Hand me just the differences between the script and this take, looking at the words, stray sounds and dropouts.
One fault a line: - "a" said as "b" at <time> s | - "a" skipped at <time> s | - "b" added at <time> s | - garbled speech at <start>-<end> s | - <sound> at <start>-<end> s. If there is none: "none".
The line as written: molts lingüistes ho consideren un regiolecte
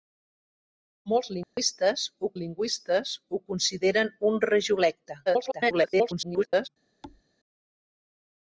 - dropout at 1.4-1.6 s
- "lingüistes ho" added at 2.4 s
- garbled speech at 5.3-6.7 s
- thud at 7.0-7.2 s